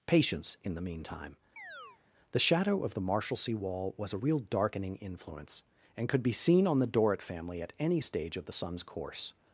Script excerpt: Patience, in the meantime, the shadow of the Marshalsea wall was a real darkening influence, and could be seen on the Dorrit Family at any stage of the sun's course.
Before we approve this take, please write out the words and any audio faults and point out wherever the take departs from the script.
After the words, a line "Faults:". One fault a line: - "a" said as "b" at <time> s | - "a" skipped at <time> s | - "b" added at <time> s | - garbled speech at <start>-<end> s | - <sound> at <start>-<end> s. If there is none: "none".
Patience, in the meantime, the shadow of the Marshalsea wall was a real darkening influence, and could be seen on the Dorrit Family at any stage of the sun's course.
Faults:
- chirp at 1.6-2.0 s